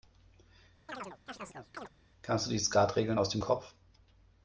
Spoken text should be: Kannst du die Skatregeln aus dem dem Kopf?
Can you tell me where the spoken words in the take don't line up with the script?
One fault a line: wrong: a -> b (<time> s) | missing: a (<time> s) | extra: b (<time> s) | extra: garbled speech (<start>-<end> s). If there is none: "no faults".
missing: dem (3.4 s)